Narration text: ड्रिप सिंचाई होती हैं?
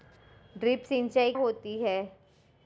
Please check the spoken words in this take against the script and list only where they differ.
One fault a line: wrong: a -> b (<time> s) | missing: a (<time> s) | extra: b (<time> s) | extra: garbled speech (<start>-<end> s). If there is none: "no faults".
no faults